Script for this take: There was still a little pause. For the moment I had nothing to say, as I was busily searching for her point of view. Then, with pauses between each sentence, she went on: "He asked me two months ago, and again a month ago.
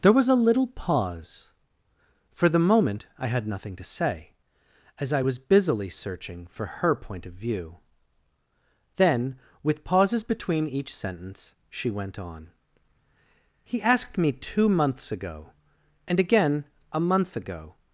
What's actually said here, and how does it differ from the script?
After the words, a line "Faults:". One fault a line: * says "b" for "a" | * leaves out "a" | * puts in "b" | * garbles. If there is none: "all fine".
There was a little pause. For the moment I had nothing to say, as I was busily searching for her point of view. Then, with pauses between each sentence, she went on: "He asked me two months ago, and again a month ago.
Faults:
* leaves out "still"